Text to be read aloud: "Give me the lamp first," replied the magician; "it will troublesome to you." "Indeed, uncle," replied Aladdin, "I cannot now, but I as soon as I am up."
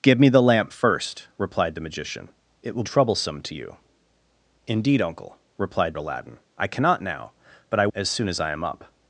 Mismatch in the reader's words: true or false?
false